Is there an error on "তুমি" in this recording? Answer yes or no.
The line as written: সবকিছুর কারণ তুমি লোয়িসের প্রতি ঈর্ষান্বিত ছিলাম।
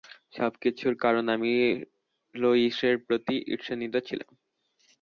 yes